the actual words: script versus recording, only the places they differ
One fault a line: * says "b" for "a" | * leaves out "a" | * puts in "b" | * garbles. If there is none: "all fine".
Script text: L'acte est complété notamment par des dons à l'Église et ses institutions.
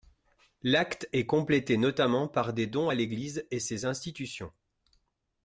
all fine